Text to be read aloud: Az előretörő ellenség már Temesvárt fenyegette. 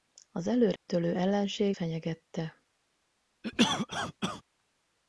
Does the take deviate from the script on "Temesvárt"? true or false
true